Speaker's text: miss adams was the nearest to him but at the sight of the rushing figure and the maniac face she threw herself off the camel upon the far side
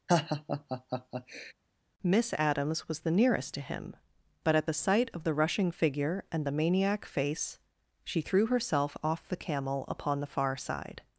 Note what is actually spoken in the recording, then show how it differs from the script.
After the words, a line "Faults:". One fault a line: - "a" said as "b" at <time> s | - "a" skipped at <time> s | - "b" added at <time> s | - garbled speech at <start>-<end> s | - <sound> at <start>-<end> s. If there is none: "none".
miss adams was the nearest to him but at the sight of the rushing figure and the maniac face she threw herself off the camel upon the far side
Faults:
- laugh at 0.1-1.5 s